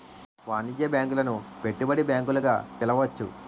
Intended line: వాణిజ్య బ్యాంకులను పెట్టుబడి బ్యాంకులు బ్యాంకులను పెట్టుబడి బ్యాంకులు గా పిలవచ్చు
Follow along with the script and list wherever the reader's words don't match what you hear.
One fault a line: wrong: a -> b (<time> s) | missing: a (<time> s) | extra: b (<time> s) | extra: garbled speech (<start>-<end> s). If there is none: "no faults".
missing: బ్యాంకులను పెట్టుబడి బ్యాంకులు (2.4 s)